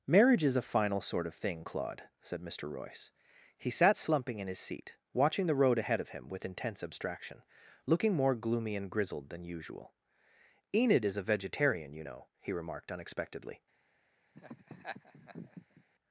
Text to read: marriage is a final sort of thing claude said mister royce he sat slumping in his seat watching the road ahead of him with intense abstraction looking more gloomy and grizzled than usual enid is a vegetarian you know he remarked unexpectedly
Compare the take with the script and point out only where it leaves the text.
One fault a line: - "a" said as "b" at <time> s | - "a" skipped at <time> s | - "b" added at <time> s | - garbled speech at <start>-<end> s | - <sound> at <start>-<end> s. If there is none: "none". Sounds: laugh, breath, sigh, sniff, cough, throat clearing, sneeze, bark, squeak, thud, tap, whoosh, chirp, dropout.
- laugh at 14.3-15.8 s